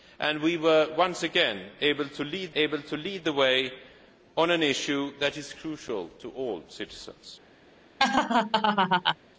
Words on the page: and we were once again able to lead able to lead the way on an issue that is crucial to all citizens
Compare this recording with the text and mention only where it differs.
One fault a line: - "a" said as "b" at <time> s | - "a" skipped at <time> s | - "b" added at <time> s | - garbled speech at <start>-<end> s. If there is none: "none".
none